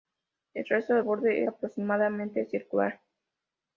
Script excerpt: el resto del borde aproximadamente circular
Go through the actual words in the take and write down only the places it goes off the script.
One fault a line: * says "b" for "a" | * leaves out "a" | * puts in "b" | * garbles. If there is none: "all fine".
all fine